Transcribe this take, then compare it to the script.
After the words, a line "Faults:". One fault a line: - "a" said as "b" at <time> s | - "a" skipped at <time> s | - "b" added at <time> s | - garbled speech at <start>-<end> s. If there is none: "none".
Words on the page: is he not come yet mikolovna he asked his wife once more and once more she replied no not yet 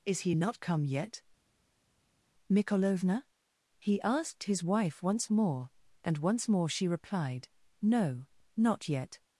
is he not come yet mikolovna he asked his wife once more and once more she replied no not yet
Faults:
none